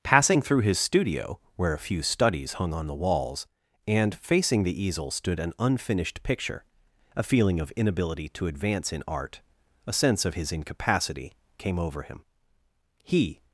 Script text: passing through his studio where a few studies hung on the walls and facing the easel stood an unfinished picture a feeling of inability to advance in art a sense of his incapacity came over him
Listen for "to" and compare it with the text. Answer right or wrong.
right